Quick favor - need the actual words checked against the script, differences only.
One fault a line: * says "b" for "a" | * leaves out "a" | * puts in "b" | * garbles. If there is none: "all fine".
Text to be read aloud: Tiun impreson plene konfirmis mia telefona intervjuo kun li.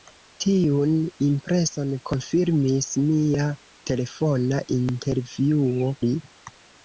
* leaves out "plene"
* leaves out "kun"